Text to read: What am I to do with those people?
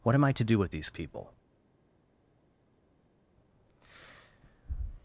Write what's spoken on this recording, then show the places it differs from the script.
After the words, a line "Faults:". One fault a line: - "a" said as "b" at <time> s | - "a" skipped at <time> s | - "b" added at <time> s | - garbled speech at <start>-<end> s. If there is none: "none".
What am I to do with these people?
Faults:
- "those" said as "these" at 0.7 s